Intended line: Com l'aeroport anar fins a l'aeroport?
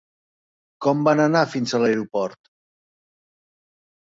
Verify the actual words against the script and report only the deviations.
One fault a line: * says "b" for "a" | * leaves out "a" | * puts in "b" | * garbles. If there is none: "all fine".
* says "van" for "l'aeroport"